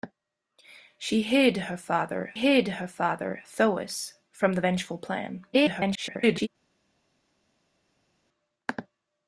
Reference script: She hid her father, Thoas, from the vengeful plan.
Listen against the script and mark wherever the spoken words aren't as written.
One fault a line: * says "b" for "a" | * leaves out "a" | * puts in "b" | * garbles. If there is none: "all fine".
* puts in "hid her father"
* garbles